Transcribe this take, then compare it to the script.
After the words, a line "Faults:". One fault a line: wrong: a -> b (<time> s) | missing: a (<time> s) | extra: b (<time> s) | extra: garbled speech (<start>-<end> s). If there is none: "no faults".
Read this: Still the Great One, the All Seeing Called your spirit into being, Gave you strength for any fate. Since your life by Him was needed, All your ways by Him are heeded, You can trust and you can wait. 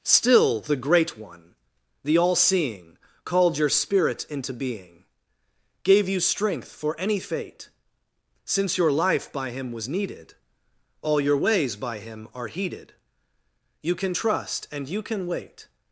Still the Great One, the All Seeing Called your spirit into being, Gave you strength for any fate. Since your life by Him was needed, All your ways by Him are heeded, You can trust and you can wait.
Faults:
no faults